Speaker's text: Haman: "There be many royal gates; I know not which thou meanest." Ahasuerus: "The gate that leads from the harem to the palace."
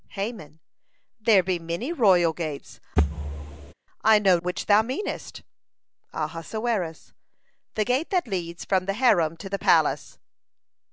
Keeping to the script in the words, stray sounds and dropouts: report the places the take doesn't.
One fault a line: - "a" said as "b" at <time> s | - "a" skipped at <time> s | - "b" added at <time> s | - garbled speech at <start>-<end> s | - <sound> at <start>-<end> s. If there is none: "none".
- thud at 3.0-3.7 s
- "not" skipped at 4.4 s